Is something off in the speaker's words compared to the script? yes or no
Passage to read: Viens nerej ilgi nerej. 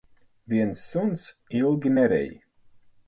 yes